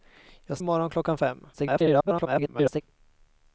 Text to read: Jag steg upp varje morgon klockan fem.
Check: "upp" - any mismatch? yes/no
yes